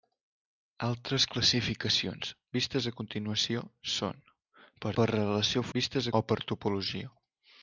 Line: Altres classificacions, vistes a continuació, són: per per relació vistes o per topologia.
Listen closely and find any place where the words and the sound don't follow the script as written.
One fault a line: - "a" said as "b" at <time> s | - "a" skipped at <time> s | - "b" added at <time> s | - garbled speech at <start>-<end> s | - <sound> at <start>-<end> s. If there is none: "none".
none